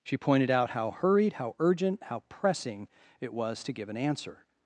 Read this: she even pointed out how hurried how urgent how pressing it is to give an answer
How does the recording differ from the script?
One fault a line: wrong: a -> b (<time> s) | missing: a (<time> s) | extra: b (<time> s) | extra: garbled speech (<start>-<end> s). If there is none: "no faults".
missing: even (0.2 s)
wrong: is -> was (3.3 s)